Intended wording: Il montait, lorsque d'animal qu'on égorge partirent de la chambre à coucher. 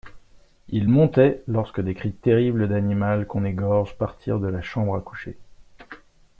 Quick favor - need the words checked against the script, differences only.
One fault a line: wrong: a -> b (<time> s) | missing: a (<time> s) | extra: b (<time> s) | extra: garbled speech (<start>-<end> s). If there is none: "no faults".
extra: des cris terribles (1.8 s)